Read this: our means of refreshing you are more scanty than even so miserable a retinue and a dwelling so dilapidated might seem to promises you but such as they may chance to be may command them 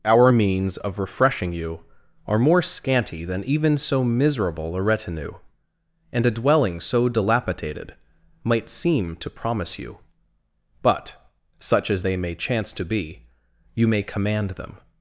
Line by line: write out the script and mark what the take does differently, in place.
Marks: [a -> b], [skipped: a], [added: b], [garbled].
our means of refreshing you are more scanty than even so miserable a retinue and a dwelling so dilapidated might seem to [promises -> promise] you but such as they may chance to be [added: you] may command them